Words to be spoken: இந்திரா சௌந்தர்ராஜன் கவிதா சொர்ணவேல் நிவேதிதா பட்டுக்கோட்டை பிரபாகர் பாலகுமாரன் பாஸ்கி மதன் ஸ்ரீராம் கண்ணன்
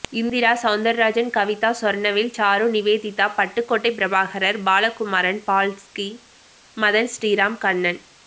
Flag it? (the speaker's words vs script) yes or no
yes